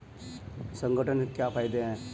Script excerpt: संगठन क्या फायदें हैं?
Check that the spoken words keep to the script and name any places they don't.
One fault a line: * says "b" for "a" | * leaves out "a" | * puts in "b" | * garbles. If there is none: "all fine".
all fine